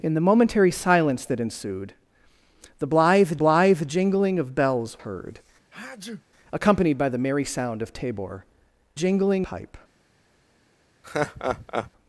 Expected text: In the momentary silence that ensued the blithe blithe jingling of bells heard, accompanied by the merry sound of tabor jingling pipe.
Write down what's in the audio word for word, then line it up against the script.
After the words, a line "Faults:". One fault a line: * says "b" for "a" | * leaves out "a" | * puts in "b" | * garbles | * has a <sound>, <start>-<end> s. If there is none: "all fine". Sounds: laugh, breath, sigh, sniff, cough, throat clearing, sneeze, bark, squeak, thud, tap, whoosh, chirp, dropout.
In the momentary silence that ensued the blithe blithe jingling of bells heard, accompanied by the merry sound of tabor jingling pipe.
Faults:
* has a sneeze, 5.7-6.2 s
* has a laugh, 11.0-11.9 s